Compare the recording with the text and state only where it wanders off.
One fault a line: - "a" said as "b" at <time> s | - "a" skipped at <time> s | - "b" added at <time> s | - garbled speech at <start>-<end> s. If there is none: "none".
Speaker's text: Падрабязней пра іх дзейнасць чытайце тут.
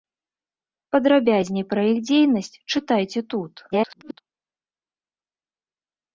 - garbled speech at 3.7-4.2 s